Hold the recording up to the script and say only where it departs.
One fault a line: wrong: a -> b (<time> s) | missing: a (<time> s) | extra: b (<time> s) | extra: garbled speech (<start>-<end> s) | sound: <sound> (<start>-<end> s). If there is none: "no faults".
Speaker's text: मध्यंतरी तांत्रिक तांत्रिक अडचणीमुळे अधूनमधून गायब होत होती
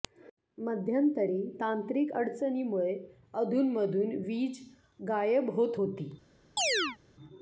missing: तांत्रिक (2.1 s)
extra: वीज (4.3 s)
sound: chirp (6.6-7.0 s)